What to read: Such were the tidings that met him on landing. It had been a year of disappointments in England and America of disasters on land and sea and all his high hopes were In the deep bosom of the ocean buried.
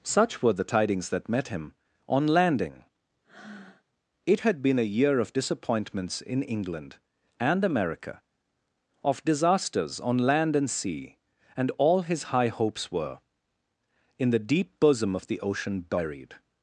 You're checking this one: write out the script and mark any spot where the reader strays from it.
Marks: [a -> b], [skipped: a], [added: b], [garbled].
Such were the tidings that met him on landing. It had been a year of disappointments in England and America of disasters on land and sea and all his high hopes were In the deep bosom of the ocean buried.